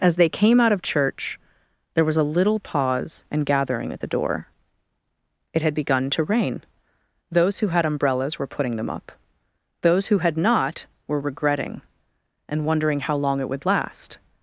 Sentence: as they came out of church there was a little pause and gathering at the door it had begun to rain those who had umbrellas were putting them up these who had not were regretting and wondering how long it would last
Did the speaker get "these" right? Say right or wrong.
wrong